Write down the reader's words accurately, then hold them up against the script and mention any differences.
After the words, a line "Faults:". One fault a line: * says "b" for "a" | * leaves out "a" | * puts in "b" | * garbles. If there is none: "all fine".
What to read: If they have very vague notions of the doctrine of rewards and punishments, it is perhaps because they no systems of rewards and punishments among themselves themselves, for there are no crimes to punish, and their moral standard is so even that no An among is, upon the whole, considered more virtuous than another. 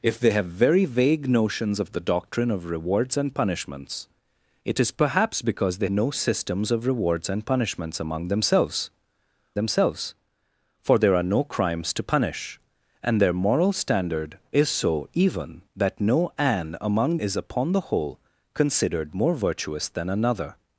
If they have very vague notions of the doctrine of rewards and punishments, it is perhaps because they no systems of rewards and punishments among themselves themselves, for there are no crimes to punish, and their moral standard is so even that no An among is, upon the whole, considered more virtuous than another.
Faults:
all fine